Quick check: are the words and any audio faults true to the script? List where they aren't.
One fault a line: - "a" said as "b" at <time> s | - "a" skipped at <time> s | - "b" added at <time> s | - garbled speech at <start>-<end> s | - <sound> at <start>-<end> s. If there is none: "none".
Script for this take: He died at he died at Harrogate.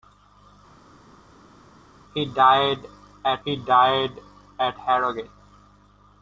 none